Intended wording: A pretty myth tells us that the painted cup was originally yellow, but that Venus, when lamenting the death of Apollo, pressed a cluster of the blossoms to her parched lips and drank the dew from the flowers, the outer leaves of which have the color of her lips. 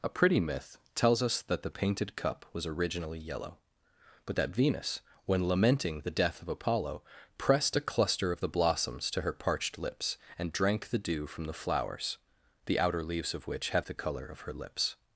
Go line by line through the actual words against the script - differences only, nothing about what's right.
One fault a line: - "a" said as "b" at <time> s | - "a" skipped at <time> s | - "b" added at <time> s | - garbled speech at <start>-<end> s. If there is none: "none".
none